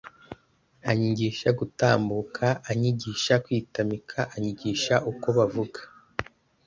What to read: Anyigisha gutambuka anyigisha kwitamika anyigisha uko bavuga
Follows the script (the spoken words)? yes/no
yes